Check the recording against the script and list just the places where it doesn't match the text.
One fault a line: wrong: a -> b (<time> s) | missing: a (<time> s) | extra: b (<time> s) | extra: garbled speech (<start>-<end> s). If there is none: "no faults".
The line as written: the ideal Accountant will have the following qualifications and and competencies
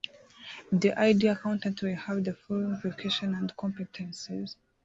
missing: and (3.5 s)